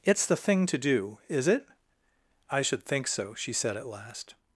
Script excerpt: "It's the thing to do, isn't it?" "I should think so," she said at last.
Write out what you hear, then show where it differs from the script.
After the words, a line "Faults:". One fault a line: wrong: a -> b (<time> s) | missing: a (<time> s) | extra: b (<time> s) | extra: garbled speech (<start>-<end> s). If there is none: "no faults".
"It's the thing to do, is it?" "I should think so," she said at last.
Faults:
wrong: isn't -> is (1.3 s)